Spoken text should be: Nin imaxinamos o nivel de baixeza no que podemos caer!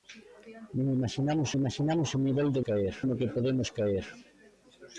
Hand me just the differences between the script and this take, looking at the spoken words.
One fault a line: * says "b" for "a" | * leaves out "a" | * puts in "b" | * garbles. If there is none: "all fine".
* puts in "imaxinamos"
* says "caer" for "baixeza"